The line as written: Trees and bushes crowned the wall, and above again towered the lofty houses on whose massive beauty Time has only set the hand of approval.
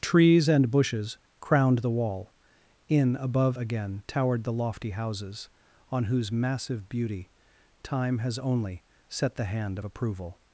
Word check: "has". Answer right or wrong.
right